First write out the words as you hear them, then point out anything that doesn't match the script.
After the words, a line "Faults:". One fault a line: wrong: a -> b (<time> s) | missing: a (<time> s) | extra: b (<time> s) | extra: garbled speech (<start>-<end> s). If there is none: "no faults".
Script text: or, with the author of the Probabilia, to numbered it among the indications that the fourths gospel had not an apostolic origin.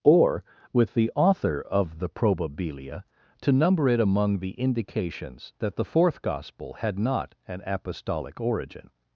or, with the author of the Probabilia, to number it among the indications that the fourth gospel had not an apostolic origin.
Faults:
wrong: numbered -> number (3.5 s)
wrong: fourths -> fourth (5.8 s)